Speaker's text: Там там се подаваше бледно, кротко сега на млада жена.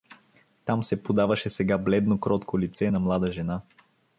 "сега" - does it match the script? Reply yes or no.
no